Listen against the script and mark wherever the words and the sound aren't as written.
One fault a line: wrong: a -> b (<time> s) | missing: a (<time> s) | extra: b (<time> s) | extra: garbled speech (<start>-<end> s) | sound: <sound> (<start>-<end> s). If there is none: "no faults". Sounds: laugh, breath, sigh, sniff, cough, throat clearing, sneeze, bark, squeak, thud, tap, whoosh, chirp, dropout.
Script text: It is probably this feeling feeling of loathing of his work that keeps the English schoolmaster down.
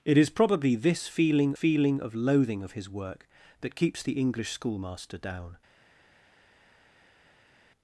no faults